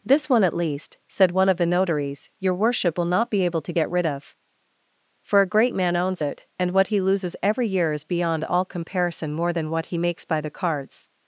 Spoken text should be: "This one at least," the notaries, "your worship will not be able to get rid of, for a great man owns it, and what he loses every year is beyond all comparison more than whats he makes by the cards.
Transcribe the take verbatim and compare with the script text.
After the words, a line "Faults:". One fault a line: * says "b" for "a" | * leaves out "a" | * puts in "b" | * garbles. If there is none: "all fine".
"This one at least," said one of the notaries, "your worship will not be able to get rid of, for a great man owns it, and what he loses every year is beyond all comparison more than what he makes by the cards.
Faults:
* puts in "said one of"
* says "what" for "whats"